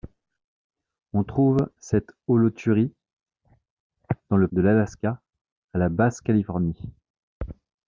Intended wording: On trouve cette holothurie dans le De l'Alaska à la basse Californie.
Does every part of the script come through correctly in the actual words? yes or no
yes